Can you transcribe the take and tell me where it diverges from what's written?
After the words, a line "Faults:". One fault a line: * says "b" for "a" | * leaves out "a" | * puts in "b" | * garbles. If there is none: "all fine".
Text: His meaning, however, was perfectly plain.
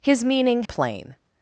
His meaning, plain.
Faults:
* leaves out "however was perfectly"